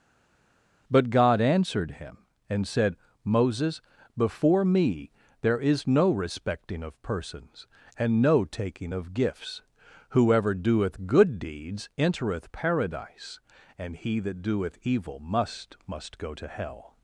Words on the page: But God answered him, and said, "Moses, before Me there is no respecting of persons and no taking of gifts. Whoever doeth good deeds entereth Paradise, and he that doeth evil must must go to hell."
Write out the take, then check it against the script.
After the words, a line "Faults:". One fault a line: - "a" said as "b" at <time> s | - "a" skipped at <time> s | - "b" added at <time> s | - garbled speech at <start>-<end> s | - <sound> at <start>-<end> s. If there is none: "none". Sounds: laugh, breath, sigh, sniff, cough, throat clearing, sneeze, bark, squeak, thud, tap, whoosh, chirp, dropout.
But God answered him, and said, "Moses, before Me there is no respecting of persons and no taking of gifts. Whoever doeth good deeds entereth Paradise, and he that doeth evil must must go to hell."
Faults:
none